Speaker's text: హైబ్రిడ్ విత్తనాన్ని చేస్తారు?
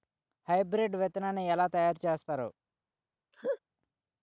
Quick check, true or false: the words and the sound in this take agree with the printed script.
false